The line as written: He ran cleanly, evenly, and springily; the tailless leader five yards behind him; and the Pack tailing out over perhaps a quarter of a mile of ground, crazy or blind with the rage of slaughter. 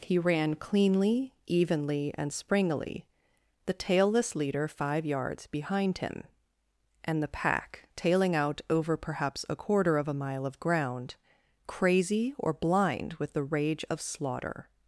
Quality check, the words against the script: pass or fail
pass